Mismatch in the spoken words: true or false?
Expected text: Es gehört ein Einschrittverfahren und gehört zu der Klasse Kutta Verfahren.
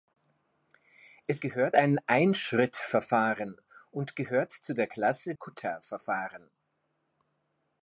false